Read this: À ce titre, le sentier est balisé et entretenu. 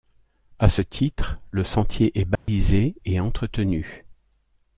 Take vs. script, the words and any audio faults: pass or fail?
fail